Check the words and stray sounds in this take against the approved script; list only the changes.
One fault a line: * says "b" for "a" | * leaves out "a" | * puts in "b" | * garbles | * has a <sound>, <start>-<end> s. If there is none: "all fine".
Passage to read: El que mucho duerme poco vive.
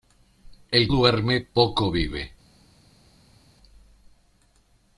* leaves out "que mucho"